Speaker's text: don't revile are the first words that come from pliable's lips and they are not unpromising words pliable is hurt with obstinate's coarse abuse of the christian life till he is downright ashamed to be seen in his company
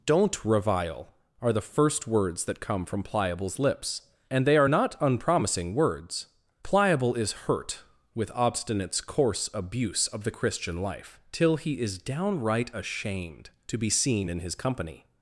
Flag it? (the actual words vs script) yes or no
no